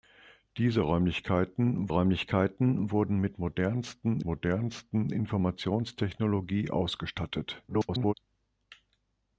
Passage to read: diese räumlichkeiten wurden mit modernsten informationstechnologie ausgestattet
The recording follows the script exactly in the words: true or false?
false